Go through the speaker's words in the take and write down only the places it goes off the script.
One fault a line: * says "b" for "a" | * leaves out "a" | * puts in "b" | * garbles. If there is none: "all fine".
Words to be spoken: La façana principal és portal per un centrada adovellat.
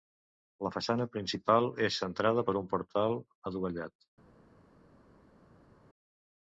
* says "centrada" for "portal"
* says "portal" for "centrada"